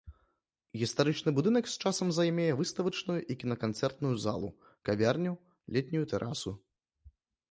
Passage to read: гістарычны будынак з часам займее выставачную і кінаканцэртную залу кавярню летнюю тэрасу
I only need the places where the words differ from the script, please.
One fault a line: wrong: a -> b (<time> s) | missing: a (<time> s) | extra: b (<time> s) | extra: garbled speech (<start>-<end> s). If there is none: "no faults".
no faults